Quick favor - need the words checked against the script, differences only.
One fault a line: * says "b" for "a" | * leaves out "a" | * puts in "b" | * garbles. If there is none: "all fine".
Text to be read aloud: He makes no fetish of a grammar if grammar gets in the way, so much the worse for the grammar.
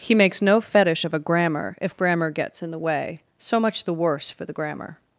all fine